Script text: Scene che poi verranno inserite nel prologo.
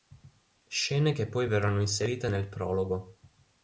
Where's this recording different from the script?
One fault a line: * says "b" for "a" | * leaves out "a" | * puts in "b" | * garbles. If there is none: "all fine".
all fine